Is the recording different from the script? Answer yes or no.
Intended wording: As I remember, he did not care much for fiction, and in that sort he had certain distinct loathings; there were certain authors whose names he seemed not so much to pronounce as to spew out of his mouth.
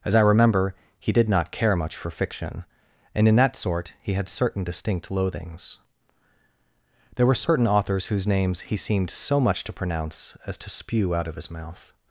yes